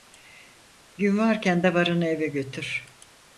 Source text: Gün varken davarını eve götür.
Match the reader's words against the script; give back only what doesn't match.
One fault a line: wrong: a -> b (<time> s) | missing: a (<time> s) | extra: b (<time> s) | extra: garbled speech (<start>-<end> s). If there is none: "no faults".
no faults